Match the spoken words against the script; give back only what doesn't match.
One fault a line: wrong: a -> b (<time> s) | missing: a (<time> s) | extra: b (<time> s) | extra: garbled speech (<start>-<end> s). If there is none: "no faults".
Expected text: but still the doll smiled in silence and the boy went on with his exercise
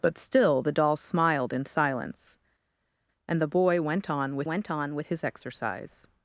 extra: went on with (4.4 s)